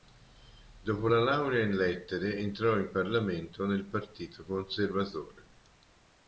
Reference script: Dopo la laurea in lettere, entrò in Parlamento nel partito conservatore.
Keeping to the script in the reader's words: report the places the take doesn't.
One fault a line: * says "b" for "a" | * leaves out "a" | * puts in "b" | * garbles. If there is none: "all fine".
all fine